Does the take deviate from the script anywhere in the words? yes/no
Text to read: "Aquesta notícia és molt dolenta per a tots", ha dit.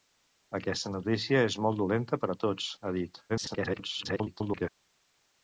yes